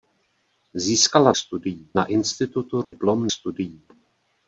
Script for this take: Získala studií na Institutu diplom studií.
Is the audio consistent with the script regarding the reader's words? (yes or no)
yes